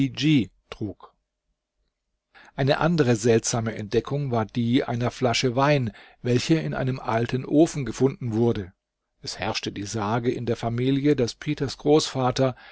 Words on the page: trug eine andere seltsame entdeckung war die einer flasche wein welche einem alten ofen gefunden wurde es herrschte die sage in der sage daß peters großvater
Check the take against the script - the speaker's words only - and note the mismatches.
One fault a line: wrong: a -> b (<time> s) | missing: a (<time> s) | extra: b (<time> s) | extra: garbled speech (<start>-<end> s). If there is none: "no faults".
extra: in (6.5 s)
wrong: sage -> familie (10.6 s)